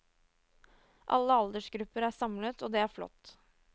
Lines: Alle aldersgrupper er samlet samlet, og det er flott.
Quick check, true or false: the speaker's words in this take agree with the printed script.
false